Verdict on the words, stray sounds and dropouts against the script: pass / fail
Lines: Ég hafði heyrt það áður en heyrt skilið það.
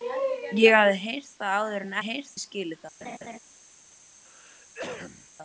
fail